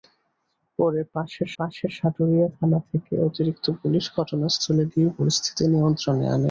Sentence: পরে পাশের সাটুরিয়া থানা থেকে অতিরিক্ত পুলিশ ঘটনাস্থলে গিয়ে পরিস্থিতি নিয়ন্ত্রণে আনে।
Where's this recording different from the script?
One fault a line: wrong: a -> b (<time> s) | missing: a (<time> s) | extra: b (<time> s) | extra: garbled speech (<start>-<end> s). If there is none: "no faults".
extra: পাশের (1.6 s)